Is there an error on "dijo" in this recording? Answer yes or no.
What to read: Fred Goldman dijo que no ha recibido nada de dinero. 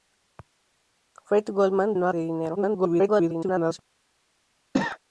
yes